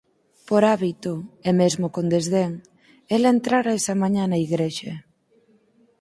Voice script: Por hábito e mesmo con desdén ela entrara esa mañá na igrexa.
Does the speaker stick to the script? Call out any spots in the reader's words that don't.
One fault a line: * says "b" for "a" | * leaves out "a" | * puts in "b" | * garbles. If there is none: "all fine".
all fine